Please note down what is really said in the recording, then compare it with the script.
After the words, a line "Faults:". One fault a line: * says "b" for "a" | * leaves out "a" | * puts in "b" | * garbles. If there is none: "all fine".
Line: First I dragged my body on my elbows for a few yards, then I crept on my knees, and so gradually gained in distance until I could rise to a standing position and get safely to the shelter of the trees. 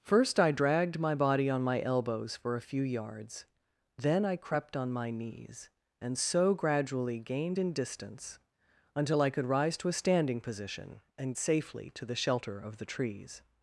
First I dragged my body on my elbows for a few yards, then I crept on my knees, and so gradually gained in distance until I could rise to a standing position and safely to the shelter of the trees.
Faults:
* leaves out "get"